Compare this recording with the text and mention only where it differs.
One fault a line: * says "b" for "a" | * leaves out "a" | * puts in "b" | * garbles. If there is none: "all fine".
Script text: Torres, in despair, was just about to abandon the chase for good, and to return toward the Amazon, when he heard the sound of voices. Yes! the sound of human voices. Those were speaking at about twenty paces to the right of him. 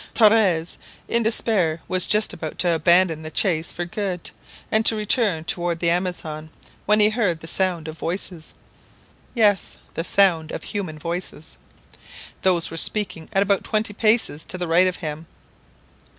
all fine